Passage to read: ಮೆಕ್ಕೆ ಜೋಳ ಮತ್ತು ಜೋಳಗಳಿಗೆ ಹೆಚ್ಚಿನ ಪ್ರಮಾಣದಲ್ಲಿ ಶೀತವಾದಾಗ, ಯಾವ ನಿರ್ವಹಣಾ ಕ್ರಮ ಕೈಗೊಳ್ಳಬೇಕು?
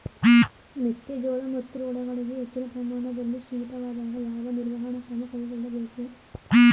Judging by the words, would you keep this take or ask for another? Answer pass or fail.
pass